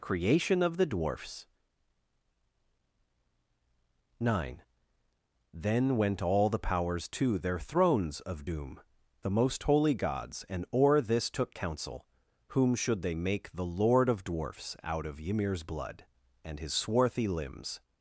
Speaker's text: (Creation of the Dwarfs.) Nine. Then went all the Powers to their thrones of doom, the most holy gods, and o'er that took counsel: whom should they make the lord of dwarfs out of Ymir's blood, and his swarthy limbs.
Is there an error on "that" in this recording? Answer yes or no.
yes